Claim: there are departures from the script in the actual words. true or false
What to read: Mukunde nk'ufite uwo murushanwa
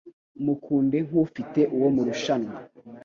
false